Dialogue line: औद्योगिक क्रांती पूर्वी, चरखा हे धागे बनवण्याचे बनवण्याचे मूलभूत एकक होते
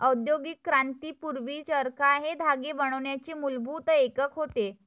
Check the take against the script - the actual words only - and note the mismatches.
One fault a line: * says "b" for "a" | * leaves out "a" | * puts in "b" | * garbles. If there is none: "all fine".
* leaves out "बनवण्याचे"